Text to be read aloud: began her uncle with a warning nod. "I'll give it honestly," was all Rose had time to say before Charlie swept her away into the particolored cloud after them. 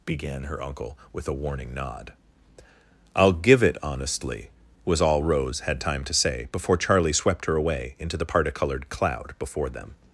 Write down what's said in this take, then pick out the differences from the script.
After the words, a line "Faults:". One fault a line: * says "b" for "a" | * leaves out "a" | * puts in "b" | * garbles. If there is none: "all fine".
began her uncle with a warning nod. "I'll give it honestly," was all Rose had time to say before Charlie swept her away into the particolored cloud before them.
Faults:
* says "before" for "after"